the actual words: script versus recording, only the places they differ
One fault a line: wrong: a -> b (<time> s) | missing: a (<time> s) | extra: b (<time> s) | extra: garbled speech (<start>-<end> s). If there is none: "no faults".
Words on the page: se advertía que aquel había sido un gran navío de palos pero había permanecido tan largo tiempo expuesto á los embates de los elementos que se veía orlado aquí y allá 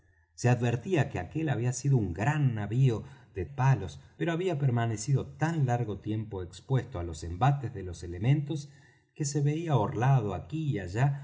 no faults